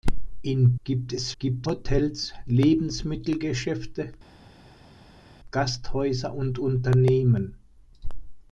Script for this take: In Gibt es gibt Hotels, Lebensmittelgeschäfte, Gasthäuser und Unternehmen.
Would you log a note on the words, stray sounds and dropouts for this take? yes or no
no